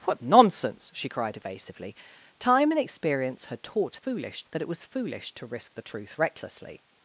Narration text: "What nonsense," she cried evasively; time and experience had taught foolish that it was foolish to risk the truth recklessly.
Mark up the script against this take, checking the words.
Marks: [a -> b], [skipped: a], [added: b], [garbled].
"What nonsense," she cried evasively; time and experience had taught foolish that it was foolish to risk the truth recklessly.